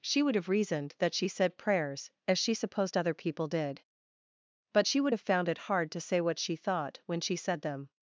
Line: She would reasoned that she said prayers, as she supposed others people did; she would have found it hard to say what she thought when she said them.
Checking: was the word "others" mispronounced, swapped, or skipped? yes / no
yes